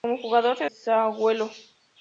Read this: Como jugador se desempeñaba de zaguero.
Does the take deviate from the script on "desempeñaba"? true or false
true